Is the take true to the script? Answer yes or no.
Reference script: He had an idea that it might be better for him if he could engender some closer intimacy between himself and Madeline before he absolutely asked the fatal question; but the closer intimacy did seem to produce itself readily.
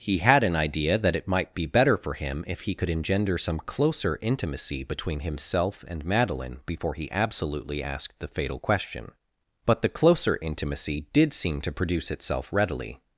yes